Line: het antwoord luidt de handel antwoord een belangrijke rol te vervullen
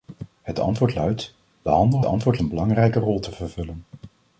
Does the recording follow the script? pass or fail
pass